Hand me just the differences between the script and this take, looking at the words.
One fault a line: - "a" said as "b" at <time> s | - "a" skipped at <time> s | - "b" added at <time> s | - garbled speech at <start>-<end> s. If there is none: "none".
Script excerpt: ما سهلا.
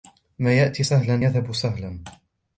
- "يأتي سهلا يذهب" added at 0.5 s